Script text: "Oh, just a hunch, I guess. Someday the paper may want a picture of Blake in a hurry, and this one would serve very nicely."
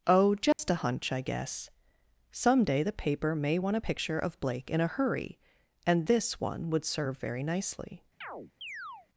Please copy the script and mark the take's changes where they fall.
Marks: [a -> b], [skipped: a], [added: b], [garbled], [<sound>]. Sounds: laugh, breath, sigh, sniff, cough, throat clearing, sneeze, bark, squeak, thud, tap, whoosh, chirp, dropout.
"Oh, just [dropout] a hunch, I guess. Someday the paper may want a picture of Blake in a hurry, and this one would serve very nicely." [chirp]